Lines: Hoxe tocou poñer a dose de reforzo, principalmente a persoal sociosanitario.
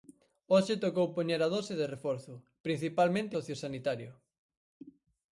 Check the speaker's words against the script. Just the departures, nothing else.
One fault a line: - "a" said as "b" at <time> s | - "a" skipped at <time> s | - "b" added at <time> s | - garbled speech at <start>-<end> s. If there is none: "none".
- "a persoal" skipped at 3.4 s